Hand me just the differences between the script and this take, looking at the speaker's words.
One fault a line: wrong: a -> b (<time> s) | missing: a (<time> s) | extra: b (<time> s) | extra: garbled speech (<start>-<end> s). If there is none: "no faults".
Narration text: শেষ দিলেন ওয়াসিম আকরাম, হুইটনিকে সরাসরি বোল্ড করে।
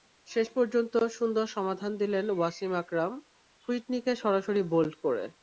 extra: পর্যন্ত সুন্দর সমাধান (0.5 s)